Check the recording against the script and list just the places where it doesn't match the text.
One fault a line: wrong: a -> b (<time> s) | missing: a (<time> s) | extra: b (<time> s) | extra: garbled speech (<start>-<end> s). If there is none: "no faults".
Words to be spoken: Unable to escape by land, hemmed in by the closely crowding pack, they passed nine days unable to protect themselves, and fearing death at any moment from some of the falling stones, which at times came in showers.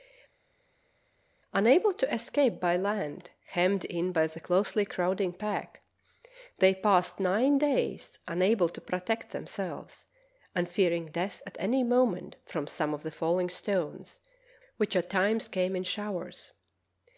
no faults